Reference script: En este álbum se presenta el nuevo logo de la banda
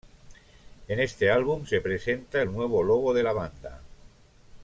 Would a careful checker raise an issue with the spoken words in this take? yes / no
no